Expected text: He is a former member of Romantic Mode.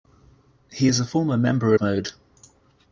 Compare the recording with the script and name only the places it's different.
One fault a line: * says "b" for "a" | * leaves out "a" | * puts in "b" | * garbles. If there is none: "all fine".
* leaves out "of Romantic"